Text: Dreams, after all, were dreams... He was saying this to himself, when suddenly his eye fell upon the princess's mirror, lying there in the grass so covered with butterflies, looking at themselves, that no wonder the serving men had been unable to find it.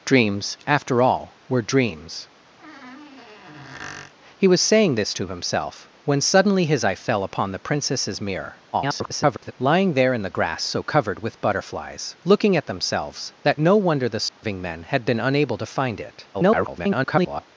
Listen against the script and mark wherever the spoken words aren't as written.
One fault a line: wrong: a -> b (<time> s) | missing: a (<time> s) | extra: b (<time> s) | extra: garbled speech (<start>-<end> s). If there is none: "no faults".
extra: garbled speech (8.7-9.5 s)
extra: garbled speech (16.3-17.5 s)